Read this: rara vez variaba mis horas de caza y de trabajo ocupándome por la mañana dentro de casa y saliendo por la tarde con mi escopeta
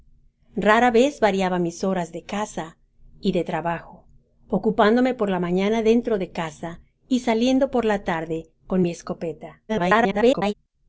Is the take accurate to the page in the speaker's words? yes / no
no